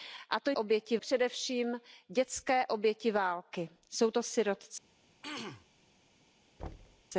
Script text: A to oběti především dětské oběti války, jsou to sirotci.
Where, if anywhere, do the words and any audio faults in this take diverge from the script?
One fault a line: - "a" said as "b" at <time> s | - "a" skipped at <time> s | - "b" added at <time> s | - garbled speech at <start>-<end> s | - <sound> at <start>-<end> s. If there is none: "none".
- throat clearing at 5.2-5.7 s
- thud at 6.6-7.0 s